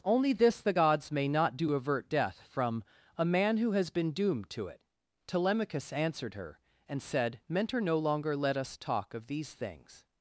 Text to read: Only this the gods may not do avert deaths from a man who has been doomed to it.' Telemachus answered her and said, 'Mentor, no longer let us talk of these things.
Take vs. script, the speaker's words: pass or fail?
fail